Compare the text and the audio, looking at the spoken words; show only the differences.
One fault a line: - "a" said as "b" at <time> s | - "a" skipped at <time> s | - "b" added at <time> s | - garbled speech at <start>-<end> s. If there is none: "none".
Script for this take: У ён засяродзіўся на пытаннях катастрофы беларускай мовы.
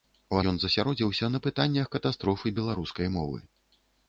none